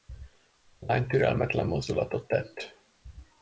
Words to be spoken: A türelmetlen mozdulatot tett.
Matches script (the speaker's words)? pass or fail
fail